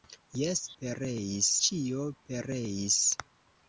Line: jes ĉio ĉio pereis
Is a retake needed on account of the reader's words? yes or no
yes